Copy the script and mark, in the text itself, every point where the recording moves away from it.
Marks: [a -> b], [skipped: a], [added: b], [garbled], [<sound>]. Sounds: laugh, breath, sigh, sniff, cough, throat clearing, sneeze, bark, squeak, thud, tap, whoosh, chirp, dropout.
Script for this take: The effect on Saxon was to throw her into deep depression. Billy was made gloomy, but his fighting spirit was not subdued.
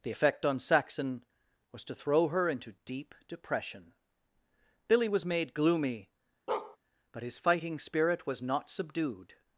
The effect on Saxon was to throw her into deep depression. Billy was made gloomy, [bark] but his fighting spirit was not subdued.